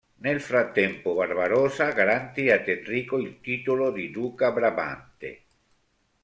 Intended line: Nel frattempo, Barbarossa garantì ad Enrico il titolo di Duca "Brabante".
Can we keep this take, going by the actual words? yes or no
yes